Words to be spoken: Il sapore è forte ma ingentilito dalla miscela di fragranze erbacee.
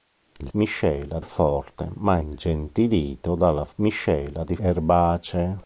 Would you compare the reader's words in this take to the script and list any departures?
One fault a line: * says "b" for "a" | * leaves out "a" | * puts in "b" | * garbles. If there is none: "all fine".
* says "miscela" for "sapore"
* leaves out "fragranze"